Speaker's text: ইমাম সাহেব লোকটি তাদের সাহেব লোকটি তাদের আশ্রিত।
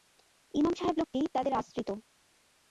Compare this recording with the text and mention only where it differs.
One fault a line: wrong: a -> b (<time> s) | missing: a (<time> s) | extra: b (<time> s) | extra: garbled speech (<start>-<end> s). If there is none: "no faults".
missing: সাহেব লোকটি তাদের (1.5 s)